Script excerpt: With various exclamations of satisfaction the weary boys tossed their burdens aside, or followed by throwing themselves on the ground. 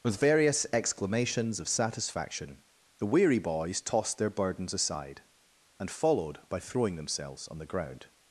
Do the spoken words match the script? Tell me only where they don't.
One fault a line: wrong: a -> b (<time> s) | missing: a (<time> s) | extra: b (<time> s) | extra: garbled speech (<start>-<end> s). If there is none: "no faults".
wrong: or -> and (5.8 s)